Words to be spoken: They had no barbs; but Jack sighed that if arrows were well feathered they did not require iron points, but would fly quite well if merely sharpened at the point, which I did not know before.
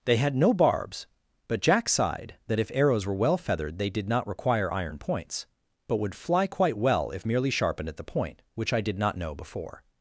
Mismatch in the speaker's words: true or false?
false